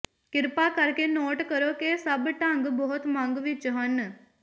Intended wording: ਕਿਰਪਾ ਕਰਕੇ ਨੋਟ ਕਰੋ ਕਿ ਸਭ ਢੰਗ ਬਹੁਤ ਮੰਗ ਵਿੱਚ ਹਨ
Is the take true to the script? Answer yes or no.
yes